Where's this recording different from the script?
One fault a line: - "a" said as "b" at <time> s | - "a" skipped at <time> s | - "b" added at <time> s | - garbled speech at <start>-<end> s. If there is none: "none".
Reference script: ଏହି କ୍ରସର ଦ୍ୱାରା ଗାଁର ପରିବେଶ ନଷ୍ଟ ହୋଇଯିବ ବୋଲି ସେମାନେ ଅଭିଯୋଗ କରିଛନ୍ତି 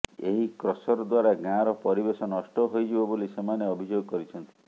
none